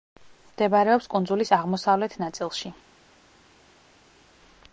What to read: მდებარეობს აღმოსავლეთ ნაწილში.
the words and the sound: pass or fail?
fail